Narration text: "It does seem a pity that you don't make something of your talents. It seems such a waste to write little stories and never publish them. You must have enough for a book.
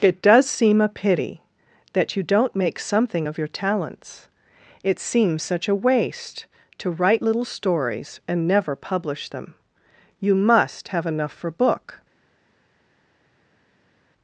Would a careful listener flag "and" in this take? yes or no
no